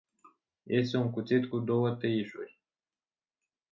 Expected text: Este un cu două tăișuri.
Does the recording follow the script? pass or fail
fail